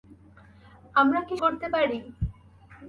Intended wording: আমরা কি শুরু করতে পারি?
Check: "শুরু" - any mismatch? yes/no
yes